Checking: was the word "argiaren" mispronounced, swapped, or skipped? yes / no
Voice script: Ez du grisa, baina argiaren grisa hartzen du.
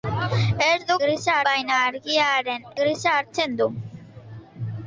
no